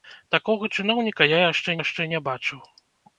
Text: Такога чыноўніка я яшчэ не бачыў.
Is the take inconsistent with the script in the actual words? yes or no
yes